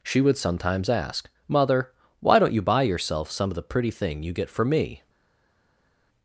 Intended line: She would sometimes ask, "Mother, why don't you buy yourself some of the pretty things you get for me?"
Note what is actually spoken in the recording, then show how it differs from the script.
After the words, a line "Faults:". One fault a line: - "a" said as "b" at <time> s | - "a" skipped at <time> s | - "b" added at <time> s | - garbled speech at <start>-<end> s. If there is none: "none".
She would sometimes ask, "Mother, why don't you buy yourself some of the pretty thing you get for me?"
Faults:
- "things" said as "thing" at 3.9 s